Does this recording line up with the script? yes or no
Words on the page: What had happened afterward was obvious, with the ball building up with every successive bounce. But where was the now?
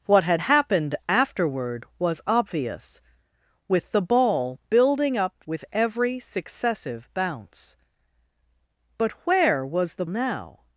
yes